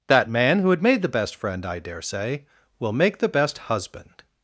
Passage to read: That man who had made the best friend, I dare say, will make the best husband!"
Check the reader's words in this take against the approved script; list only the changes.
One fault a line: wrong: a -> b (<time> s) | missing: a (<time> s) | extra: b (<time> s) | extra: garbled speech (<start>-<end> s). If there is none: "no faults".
no faults